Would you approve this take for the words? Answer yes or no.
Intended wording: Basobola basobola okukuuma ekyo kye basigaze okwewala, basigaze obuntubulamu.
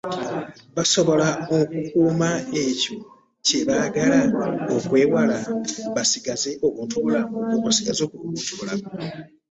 no